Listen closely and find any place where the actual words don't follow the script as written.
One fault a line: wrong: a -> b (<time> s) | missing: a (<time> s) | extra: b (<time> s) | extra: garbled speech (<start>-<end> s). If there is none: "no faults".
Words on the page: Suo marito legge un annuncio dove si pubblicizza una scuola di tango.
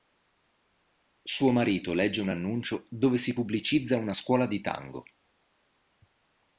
no faults